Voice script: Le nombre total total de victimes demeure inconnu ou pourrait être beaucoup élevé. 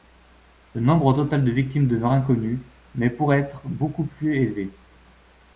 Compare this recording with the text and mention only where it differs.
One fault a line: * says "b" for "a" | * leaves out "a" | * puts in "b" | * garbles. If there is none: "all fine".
* leaves out "total"
* says "mais" for "ou"
* puts in "plus"